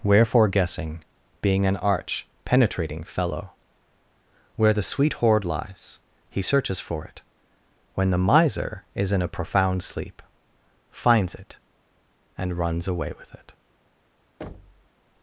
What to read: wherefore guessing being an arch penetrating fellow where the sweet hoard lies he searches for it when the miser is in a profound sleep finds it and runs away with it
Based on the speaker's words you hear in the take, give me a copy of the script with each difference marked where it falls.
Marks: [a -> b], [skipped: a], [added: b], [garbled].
wherefore guessing being an arch penetrating fellow where the sweet hoard lies he searches for it when the miser is in a profound sleep finds it and runs away with it